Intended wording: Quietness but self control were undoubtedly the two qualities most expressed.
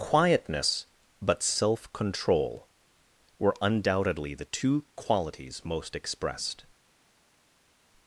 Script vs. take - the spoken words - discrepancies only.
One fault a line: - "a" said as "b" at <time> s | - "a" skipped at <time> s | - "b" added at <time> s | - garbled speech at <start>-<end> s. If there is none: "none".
none